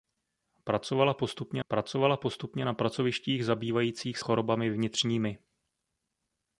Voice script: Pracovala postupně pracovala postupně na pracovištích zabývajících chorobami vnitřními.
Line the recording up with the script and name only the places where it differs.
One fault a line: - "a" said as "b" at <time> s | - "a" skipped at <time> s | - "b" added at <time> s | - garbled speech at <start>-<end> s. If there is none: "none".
none